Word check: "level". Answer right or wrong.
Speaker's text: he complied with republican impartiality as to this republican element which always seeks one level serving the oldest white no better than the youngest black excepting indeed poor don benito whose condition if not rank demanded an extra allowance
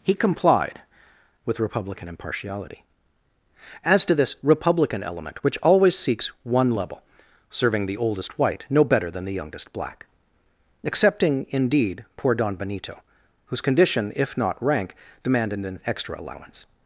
right